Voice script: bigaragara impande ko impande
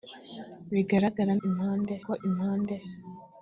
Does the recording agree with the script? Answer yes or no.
yes